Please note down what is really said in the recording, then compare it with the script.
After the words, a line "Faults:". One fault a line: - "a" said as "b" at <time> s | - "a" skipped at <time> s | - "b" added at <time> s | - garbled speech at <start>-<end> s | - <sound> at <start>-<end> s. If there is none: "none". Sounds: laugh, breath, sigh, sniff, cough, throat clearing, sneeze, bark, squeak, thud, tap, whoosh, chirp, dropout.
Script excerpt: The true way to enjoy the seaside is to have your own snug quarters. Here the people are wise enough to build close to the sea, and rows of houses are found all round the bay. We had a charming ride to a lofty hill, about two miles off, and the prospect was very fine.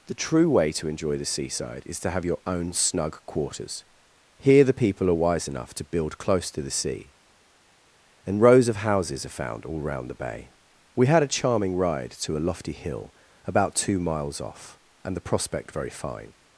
The true way to enjoy the seaside is to have your own snug quarters. Here the people are wise enough to build close to the sea, and rows of houses are found all round the bay. We had a charming ride to a lofty hill, about two miles off, and the prospect very fine.
Faults:
- "was" skipped at 15.7 s